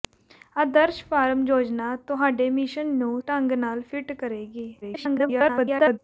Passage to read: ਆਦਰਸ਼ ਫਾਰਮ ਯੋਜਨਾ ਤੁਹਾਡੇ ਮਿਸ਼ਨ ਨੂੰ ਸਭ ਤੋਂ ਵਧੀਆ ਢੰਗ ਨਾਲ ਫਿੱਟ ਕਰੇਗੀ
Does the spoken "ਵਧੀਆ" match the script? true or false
false